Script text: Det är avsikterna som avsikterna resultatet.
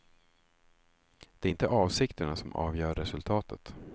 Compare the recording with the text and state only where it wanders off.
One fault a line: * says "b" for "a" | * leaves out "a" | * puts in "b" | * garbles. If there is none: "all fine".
* puts in "inte"
* says "avgör" for "avsikterna"